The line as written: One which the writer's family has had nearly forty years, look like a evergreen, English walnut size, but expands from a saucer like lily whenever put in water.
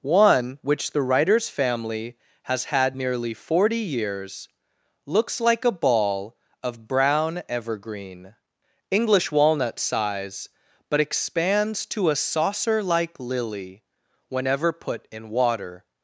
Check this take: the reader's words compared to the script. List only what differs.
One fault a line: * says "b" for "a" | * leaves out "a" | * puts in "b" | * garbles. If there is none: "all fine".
* says "looks" for "look"
* puts in "ball of brown"
* says "to" for "from"